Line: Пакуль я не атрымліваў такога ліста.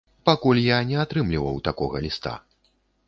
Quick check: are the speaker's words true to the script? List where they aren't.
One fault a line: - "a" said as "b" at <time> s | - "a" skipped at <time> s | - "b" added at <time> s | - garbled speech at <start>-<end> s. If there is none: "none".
none